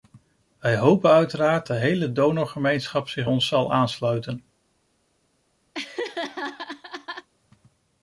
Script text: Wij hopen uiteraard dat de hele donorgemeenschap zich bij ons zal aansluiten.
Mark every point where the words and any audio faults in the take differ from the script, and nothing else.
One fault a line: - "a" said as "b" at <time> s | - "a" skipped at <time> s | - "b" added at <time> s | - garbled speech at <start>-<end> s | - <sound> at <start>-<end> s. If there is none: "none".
- "dat" skipped at 1.7 s
- "bij" skipped at 3.3 s
- laugh at 5.7-7.3 s